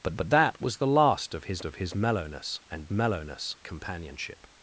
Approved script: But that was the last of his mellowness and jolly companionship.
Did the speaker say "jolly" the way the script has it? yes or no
no